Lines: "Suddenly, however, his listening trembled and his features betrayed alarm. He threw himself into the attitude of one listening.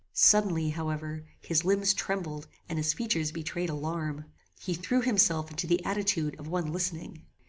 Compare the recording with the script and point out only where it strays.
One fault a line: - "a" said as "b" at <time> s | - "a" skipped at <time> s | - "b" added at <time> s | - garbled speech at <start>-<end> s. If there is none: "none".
- "listening" said as "limbs" at 1.6 s